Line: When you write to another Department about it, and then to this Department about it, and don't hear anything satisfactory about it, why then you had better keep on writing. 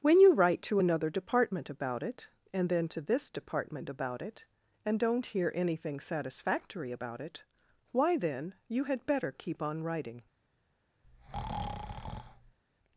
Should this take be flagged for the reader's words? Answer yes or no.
no